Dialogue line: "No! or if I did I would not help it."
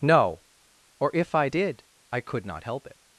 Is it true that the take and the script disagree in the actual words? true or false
true